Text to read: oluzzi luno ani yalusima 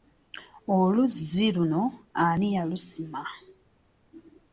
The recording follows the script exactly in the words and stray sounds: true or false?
true